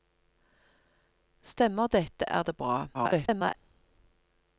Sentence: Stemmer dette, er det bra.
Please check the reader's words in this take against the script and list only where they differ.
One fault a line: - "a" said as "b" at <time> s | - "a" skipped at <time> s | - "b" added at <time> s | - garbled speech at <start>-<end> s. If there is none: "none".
- garbled speech at 2.9-3.6 s